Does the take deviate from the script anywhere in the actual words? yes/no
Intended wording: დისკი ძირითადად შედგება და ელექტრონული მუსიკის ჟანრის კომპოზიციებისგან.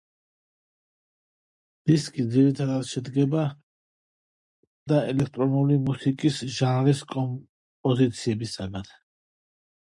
no